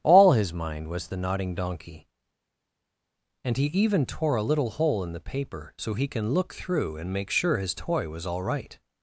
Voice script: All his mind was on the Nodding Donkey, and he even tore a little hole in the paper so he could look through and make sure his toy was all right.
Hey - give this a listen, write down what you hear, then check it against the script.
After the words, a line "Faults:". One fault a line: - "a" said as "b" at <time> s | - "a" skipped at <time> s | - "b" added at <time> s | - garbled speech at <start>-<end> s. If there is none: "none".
All his mind was the Nodding Donkey, and he even tore a little hole in the paper so he can look through and make sure his toy was all right.
Faults:
- "on" skipped at 1.1 s
- "could" said as "can" at 6.1 s